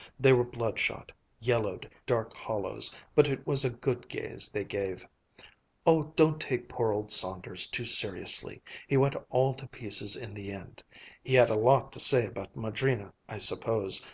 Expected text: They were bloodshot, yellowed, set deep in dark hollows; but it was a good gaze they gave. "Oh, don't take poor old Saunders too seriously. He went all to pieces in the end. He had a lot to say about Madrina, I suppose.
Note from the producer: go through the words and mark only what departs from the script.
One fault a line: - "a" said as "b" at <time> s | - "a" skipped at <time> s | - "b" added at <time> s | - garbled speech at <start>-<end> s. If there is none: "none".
- "set deep in" skipped at 1.9 s